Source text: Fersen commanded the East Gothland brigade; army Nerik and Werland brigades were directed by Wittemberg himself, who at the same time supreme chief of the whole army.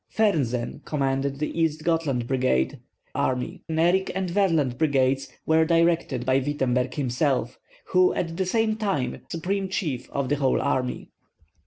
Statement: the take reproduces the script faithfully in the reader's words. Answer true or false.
true